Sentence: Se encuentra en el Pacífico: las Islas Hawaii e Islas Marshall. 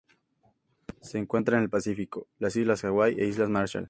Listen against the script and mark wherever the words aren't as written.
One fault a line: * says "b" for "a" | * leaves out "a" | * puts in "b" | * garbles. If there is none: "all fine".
all fine